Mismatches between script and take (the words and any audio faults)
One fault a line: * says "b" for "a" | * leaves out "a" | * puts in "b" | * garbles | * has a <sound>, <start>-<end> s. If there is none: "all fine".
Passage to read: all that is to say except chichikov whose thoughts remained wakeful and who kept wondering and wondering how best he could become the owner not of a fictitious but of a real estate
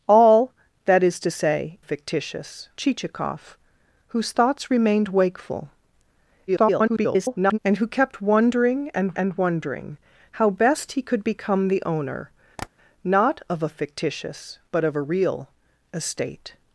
* says "fictitious" for "except"
* garbles
* puts in "and"
* has a tap, 12.6-12.7 s